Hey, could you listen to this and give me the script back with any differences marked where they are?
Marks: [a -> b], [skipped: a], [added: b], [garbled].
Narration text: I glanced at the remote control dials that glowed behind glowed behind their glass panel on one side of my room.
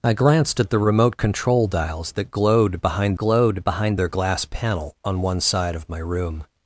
I glanced at the remote control dials that glowed behind glowed behind their glass panel on one side of my room.